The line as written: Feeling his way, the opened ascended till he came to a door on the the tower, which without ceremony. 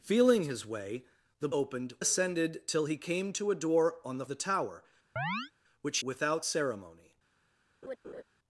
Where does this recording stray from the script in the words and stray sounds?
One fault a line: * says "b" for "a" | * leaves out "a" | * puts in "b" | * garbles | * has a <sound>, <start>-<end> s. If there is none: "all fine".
* has a chirp, 5.2-5.5 s
* has a laugh, 7.8-8.2 s